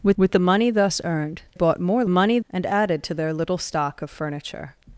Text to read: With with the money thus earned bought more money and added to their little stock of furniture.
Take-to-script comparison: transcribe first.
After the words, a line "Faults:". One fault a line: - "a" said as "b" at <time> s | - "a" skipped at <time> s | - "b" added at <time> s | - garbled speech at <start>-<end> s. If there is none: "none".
With with the money thus earned bought more money and added to their little stock of furniture.
Faults:
none